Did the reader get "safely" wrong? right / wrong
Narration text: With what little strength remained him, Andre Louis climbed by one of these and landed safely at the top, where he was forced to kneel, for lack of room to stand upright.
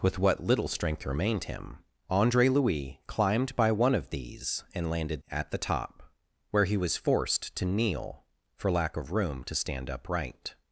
wrong